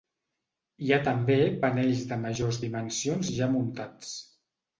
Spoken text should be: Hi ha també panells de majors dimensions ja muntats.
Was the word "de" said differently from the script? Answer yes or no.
no